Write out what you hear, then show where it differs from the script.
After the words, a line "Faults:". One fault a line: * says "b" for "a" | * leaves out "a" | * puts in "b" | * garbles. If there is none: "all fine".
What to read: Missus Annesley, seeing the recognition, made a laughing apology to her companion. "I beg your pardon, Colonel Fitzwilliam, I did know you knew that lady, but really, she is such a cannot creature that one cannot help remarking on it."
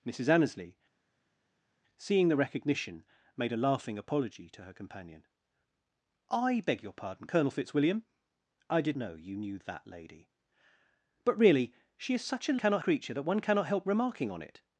Missus Annesley, seeing the recognition, made a laughing apology to her companion. "I beg your pardon, Colonel Fitzwilliam, I did know you knew that lady, but really, she is such a cannot creature that one cannot help remarking on it."
Faults:
all fine